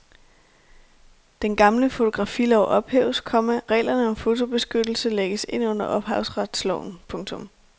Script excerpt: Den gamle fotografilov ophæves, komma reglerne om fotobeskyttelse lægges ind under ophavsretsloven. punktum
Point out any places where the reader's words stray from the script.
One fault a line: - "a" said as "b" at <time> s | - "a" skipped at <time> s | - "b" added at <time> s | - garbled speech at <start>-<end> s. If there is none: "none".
none